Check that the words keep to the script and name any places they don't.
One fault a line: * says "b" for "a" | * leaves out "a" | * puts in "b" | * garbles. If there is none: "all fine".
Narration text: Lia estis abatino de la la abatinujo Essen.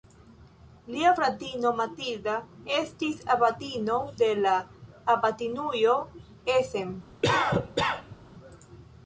* puts in "fratino Matilda"
* leaves out "la"